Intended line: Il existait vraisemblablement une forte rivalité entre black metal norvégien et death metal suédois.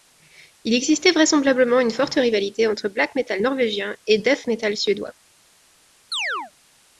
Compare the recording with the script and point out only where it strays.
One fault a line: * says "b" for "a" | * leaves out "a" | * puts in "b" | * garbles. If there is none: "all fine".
all fine